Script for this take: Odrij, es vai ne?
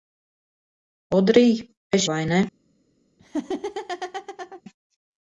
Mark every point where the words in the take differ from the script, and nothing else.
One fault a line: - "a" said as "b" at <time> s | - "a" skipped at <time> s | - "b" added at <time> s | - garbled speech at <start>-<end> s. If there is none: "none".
none